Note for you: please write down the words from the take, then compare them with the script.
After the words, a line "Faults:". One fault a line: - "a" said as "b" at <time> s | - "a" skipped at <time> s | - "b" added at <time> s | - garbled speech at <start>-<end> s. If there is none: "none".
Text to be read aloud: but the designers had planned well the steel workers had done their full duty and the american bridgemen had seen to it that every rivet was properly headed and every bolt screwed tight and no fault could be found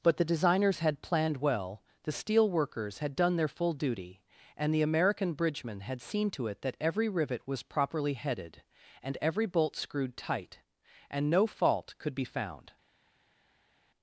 but the designers had planned well the steel workers had done their full duty and the american bridgemen had seen to it that every rivet was properly headed and every bolt screwed tight and no fault could be found
Faults:
none